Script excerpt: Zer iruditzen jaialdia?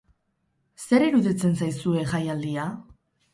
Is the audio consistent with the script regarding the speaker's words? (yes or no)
no